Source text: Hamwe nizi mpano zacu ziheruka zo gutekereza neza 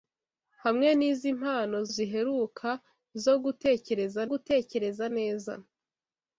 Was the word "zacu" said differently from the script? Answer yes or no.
yes